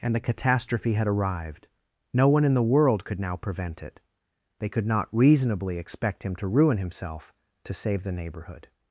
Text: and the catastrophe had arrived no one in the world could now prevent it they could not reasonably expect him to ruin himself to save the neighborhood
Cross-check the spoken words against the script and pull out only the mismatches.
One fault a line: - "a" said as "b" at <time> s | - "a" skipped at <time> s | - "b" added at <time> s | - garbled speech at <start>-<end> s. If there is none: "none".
none